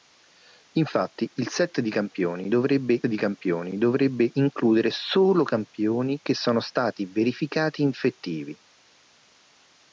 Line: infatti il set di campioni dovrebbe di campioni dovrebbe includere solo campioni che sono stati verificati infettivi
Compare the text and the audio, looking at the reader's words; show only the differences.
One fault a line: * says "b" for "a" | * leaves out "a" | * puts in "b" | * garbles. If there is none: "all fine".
all fine